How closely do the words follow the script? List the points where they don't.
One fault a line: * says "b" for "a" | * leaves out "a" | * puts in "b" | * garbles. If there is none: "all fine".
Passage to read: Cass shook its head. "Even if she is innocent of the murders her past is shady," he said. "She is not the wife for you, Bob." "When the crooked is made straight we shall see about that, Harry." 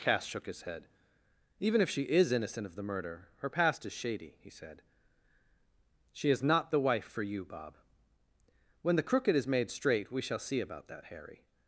* says "his" for "its"
* says "murder" for "murders"